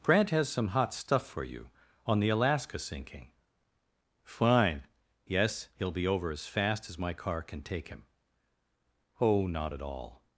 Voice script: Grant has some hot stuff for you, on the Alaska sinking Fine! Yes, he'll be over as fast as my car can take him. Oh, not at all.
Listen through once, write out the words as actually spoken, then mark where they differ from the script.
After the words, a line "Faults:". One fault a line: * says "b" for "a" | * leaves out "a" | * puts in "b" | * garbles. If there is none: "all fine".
Grant has some hot stuff for you, on the Alaska sinking Fine! Yes, he'll be over as fast as my car can take him. Oh, not at all.
Faults:
all fine